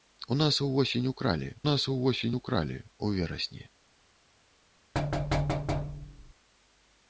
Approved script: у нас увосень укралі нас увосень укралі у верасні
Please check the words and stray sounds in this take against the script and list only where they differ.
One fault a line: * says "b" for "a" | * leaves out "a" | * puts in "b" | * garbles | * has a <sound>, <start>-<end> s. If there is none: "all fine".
* has a thud, 4.9-6.3 s